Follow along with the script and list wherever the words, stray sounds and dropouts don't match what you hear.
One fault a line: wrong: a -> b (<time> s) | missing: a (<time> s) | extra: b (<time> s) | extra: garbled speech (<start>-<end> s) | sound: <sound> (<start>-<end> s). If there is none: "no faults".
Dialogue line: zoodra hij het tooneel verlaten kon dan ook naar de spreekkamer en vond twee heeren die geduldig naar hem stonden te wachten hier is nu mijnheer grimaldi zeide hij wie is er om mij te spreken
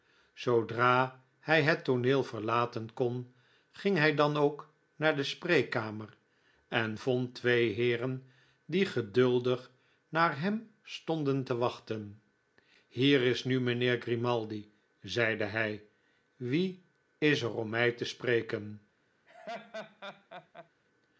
extra: ging hij (3.7 s)
sound: laugh (19.3-20.7 s)